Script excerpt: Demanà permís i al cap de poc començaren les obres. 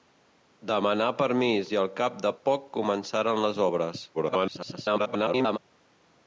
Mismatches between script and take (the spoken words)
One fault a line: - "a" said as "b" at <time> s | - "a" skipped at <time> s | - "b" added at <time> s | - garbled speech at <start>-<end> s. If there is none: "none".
- garbled speech at 4.1-5.6 s